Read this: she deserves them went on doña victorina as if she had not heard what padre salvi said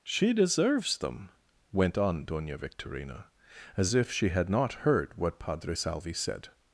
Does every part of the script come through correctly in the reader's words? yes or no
yes